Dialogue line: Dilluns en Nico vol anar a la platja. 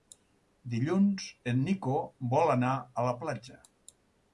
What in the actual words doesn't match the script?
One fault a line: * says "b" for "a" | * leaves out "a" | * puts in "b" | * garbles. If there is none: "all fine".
all fine